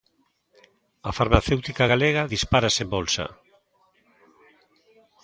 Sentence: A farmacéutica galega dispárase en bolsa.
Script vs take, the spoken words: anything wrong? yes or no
no